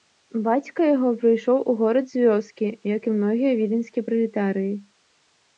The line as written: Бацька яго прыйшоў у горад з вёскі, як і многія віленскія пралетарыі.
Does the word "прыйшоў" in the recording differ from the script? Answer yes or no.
no